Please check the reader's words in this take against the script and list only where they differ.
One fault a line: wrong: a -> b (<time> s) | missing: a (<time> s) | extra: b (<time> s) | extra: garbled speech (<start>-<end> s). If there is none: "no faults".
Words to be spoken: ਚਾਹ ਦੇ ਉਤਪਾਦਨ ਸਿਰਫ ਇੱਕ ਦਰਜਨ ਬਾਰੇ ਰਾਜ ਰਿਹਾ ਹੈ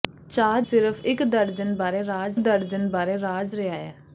wrong: ਦੇ ਉਤਪਾਦਨ ਸਿਰਫ ਇੱਕ -> ਸਿਰਫ ਇੱਕ ਦਰਜਨ ਬਾਰੇ ਰਾਜ (0.6 s)